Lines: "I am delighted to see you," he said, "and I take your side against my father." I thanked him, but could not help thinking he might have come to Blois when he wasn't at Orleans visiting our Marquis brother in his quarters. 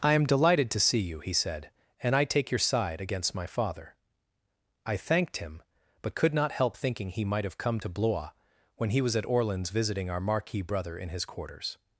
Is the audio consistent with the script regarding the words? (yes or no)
no